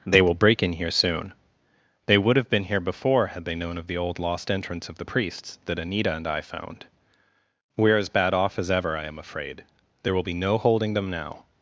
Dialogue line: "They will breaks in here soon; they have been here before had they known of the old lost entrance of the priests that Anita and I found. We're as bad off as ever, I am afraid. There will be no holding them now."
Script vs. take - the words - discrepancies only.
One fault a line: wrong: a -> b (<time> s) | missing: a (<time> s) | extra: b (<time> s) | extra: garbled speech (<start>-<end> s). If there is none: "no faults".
wrong: breaks -> break (0.3 s)
extra: would (2.2 s)